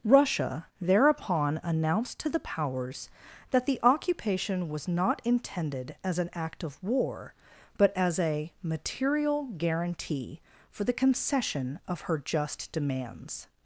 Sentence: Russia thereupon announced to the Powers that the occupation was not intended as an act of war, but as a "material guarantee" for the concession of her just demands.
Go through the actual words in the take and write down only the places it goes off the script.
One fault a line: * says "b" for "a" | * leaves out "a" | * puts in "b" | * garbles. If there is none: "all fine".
all fine